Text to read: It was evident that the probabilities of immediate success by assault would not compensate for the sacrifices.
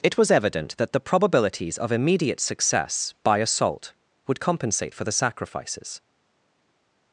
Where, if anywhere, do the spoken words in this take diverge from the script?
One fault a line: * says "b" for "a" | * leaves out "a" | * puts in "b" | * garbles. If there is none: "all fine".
* leaves out "not"